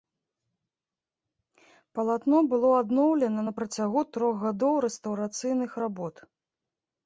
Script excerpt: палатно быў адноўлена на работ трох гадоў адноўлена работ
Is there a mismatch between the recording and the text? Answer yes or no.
yes